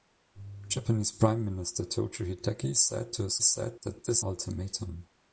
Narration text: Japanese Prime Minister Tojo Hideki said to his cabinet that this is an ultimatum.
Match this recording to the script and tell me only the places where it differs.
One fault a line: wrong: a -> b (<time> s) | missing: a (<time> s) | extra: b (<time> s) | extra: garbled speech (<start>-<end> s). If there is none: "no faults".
wrong: cabinet -> said (3.4 s)
missing: is an (4.3 s)